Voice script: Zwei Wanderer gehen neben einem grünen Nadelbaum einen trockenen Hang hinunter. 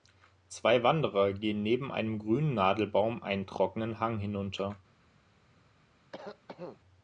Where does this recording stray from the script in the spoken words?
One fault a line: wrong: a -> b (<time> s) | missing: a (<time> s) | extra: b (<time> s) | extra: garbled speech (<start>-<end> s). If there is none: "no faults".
no faults